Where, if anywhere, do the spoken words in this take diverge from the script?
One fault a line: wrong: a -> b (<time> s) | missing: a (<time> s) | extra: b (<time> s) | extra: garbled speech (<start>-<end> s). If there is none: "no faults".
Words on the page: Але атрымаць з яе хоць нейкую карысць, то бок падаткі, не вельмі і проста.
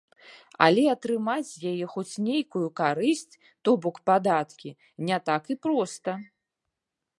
wrong: вельмі -> так (5.3 s)